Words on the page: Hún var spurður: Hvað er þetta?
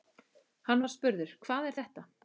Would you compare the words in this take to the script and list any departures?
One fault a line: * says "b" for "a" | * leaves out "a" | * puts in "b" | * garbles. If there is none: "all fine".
* says "Hann" for "Hún"